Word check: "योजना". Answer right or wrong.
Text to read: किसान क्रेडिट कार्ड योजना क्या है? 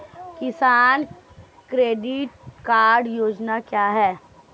right